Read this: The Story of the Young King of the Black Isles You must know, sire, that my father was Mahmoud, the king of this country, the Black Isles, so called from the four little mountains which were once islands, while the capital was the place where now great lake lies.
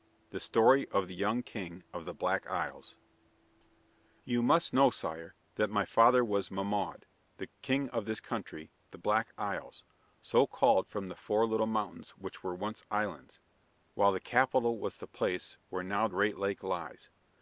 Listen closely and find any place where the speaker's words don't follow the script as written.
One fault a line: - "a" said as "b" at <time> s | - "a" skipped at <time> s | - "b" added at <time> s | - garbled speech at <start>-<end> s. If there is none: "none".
none